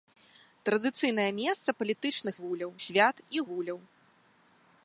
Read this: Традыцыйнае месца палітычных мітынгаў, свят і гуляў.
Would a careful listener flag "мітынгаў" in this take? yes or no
yes